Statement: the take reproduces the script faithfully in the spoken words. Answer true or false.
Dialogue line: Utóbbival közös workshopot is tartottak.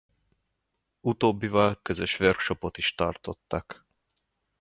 true